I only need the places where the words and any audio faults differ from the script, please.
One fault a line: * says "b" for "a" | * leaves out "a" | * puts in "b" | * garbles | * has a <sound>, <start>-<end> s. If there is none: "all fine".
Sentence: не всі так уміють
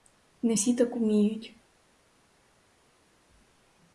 all fine